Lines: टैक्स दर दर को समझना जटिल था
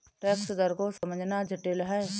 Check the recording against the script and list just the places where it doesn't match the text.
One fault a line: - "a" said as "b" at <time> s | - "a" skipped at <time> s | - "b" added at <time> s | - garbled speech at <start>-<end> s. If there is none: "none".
- "दर" skipped at 0.7 s
- "था" said as "है" at 1.8 s